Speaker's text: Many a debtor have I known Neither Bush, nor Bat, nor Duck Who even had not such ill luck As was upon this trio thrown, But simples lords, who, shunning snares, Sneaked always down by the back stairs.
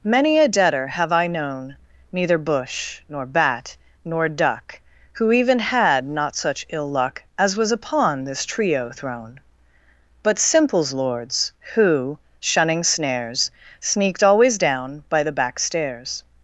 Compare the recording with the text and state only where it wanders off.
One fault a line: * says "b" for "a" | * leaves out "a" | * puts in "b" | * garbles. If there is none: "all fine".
all fine